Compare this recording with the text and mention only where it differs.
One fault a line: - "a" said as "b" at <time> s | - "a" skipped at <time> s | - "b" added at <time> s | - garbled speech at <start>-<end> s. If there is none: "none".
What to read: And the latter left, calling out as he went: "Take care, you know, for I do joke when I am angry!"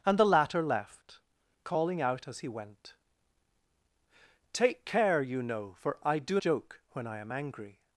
none